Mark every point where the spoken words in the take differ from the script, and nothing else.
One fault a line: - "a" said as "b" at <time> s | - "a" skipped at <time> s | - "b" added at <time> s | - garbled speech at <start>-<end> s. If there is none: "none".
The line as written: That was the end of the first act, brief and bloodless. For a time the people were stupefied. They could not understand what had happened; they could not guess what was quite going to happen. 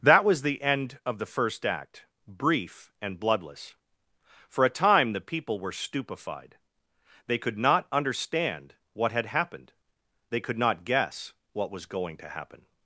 - "quite" skipped at 11.8 s